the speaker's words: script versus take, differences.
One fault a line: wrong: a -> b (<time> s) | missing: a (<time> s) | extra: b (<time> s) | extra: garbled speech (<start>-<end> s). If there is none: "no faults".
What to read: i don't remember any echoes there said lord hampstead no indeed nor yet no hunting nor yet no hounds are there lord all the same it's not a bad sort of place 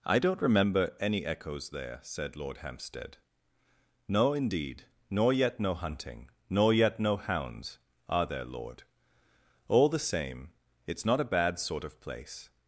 no faults